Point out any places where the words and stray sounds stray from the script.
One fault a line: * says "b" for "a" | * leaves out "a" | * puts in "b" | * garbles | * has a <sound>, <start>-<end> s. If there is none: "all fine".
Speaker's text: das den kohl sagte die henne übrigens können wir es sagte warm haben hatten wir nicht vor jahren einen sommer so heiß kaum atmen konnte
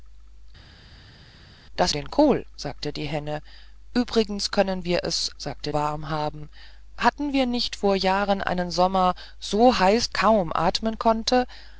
all fine